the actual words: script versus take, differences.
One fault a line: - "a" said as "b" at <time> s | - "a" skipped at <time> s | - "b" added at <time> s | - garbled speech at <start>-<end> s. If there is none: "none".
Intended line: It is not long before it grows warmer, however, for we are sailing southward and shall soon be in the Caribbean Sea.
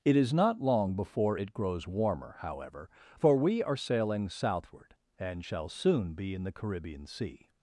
none